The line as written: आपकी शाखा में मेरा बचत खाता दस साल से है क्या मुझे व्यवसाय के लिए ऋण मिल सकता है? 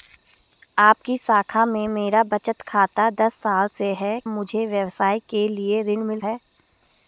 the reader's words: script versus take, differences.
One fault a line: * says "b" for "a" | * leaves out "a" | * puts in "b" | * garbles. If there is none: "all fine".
* leaves out "क्या"
* leaves out "सकता"